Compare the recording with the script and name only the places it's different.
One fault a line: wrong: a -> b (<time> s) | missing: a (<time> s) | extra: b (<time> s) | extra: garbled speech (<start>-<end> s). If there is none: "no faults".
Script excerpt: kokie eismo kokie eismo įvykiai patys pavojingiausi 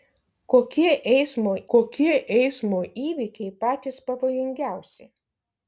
no faults